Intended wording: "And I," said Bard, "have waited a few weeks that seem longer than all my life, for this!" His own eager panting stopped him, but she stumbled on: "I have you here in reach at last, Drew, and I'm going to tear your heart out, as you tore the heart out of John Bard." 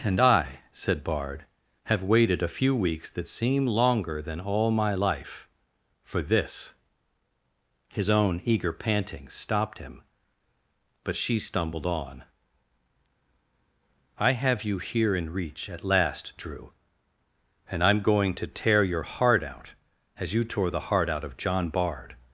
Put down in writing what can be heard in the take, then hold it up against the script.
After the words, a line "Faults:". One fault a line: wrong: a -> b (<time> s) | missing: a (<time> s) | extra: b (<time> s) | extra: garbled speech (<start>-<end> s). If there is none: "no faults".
"And I," said Bard, "have waited a few weeks that seem longer than all my life, for this!" His own eager panting stopped him, but she stumbled on: "I have you here in reach at last, Drew, and I'm going to tear your heart out, as you tore the heart out of John Bard."
Faults:
no faults